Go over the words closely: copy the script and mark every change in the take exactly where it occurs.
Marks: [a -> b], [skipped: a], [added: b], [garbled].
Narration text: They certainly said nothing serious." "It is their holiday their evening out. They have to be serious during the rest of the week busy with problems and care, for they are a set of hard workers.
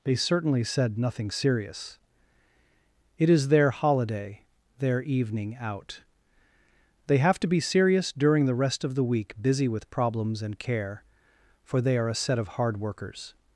They certainly said nothing serious." "It is their holiday their evening out. They have to be serious during the rest of the week busy with problems and care, for they are a set of hard workers.